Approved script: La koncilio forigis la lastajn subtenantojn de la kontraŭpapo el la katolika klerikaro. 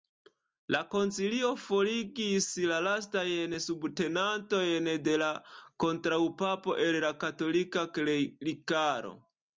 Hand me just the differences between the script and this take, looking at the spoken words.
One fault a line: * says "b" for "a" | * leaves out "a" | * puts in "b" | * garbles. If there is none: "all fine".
all fine